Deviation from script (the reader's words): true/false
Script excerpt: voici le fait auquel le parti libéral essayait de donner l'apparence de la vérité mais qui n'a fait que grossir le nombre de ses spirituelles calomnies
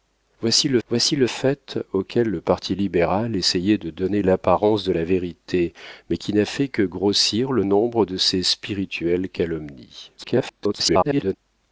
true